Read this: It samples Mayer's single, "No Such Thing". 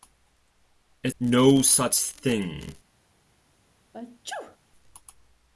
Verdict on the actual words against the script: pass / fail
fail